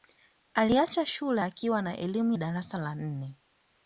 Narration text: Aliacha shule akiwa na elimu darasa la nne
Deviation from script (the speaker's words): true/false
false